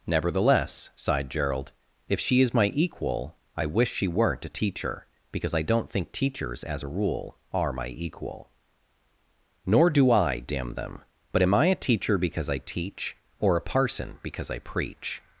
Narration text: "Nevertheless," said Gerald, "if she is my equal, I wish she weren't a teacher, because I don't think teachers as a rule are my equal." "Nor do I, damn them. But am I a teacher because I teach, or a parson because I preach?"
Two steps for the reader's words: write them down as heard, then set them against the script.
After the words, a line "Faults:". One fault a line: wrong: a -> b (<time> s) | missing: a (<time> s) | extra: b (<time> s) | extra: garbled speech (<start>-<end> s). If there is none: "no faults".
"Nevertheless," sighed Gerald, "if she is my equal, I wish she weren't a teacher, because I don't think teachers as a rule are my equal." "Nor do I, damn them. But am I a teacher because I teach, or a parson because I preach?"
Faults:
wrong: said -> sighed (0.9 s)